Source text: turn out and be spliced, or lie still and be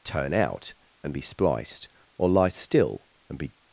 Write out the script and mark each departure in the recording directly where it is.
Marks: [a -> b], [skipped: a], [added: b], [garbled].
turn out and be spliced, or lie still and be